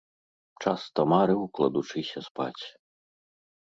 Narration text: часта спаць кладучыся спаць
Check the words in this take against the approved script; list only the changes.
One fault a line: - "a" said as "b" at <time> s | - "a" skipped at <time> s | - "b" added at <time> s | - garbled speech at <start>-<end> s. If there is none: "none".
- "спаць" said as "марыў" at 1.1 s